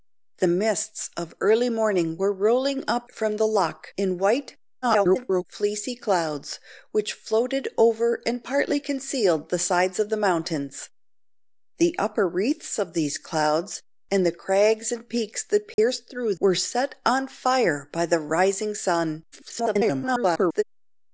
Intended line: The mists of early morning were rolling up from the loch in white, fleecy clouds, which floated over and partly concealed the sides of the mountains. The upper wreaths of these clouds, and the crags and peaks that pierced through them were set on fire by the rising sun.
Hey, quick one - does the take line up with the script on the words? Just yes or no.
no